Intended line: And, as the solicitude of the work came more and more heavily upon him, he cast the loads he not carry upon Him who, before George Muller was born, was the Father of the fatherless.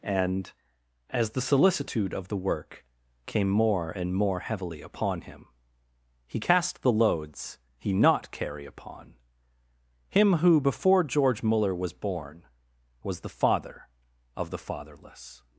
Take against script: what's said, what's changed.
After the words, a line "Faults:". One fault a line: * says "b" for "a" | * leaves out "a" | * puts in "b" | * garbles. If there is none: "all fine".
And, as the solicitude of the work came more and more heavily upon him, he cast the loads he not carry upon Him who, before George Muller was born, was the Father of the fatherless.
Faults:
all fine